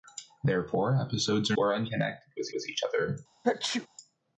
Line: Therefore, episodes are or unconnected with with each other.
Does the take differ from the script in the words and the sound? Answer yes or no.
yes